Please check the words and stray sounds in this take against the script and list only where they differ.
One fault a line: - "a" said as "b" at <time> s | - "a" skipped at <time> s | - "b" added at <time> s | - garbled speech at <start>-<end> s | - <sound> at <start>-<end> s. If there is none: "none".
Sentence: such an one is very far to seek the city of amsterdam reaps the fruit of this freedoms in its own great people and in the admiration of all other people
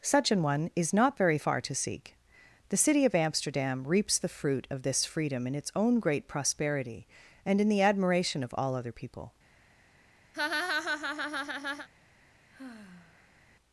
- "not" added at 0.9 s
- "freedoms" said as "freedom" at 5.0 s
- "people" said as "prosperity" at 6.3 s
- laugh at 10.3-11.9 s
- sigh at 12.5-13.4 s